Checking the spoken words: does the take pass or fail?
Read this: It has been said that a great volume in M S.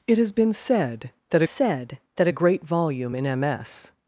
fail